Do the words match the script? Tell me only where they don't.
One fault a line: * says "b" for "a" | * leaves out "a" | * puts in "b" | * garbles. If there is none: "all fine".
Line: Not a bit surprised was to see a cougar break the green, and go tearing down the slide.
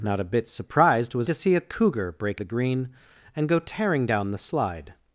all fine